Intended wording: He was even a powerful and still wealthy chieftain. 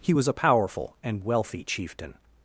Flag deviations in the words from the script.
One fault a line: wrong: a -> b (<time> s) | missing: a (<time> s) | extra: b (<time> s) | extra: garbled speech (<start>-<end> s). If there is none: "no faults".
missing: even (0.3 s)
missing: still (1.2 s)